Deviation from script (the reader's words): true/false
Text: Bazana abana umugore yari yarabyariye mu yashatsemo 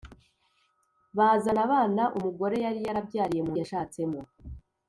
false